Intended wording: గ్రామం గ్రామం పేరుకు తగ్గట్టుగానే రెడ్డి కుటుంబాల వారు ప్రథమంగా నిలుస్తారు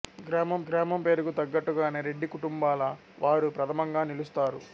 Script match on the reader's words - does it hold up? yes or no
yes